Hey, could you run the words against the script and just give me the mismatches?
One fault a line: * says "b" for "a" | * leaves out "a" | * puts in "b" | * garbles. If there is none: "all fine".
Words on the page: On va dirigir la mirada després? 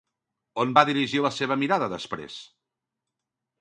* puts in "seva"